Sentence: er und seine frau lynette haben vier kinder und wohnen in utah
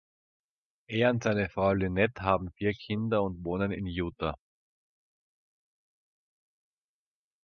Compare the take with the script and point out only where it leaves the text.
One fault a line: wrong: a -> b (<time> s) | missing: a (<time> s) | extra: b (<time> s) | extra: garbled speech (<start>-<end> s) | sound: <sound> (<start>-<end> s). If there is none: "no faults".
no faults